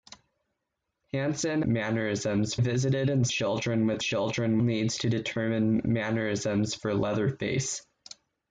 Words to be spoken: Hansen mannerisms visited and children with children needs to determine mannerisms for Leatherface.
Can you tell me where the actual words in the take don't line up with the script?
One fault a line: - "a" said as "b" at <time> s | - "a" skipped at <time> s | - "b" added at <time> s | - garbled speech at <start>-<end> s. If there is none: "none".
none